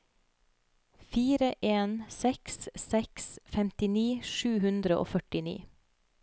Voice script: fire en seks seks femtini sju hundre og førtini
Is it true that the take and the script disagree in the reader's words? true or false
false